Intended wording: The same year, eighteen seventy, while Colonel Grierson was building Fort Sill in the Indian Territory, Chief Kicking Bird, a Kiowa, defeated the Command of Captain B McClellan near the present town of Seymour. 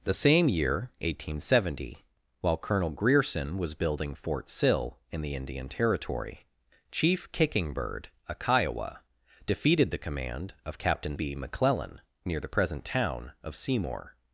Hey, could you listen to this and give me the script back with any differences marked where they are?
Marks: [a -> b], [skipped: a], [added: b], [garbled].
The same year, eighteen seventy, while Colonel Grierson was building Fort Sill in the Indian Territory, Chief Kicking Bird, a Kiowa, defeated the Command of Captain B McClellan near the present town of Seymour.